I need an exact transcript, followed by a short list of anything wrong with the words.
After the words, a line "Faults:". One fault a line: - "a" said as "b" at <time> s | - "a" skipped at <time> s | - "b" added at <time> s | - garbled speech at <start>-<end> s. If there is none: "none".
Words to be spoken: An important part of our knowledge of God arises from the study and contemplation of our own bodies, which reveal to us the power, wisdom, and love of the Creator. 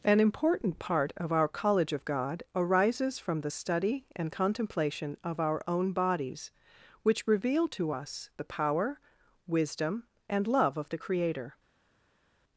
An important part of our college of God arises from the study and contemplation of our own bodies, which reveal to us the power, wisdom, and love of the Creator.
Faults:
- "knowledge" said as "college" at 1.5 s